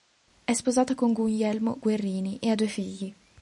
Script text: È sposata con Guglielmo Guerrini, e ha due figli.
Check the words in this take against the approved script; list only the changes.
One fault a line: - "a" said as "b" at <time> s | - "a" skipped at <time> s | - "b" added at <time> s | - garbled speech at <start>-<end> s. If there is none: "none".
none